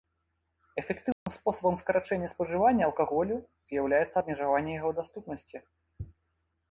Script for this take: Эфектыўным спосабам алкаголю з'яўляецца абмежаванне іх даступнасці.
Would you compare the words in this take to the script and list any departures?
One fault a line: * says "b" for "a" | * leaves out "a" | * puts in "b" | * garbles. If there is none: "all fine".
* puts in "скарачэння спажывання"
* says "яго" for "іх"